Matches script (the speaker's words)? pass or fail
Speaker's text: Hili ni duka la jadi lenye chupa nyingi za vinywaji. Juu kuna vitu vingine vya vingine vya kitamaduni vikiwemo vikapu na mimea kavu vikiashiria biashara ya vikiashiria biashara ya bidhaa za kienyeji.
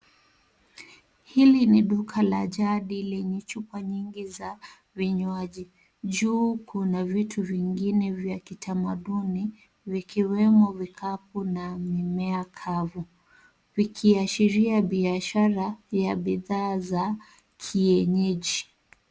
fail